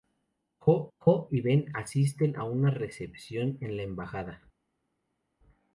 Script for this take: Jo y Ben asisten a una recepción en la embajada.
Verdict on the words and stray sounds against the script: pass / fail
fail